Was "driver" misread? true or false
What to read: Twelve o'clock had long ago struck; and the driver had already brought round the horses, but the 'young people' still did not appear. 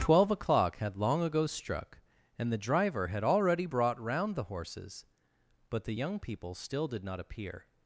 false